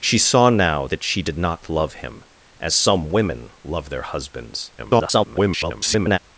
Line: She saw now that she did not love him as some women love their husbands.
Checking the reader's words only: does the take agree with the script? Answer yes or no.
no